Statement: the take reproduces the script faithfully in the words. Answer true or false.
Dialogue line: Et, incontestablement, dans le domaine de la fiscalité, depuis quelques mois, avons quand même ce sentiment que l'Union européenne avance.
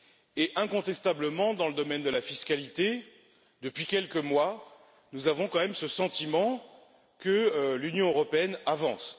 false